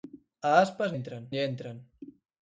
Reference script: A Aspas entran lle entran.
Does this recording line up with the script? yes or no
yes